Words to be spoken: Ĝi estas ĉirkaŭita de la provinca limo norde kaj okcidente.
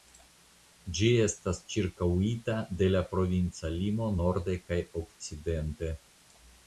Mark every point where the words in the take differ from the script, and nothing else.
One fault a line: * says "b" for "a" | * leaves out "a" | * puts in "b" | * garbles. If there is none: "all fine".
all fine